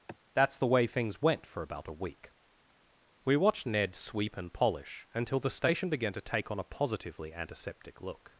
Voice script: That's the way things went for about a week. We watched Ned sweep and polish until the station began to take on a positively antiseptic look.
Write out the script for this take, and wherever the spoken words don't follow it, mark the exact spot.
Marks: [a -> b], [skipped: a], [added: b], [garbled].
That's the way things went for about a week. We watched Ned sweep and polish until the station began to take on a positively antiseptic look.